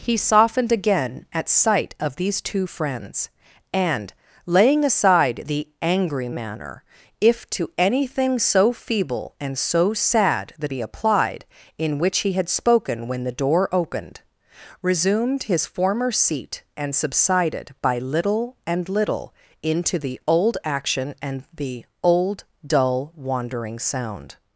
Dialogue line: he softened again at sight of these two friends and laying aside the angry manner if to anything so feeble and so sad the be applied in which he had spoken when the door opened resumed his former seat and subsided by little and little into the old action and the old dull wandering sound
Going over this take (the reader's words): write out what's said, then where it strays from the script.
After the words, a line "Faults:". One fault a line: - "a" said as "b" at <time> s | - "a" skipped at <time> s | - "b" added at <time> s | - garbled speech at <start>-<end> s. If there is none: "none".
he softened again at sight of these two friends and laying aside the angry manner if to anything so feeble and so sad the be applied in which he had spoken when the door opened resumed his former seat and subsided by little and little into the old action and the old dull wandering sound
Faults:
none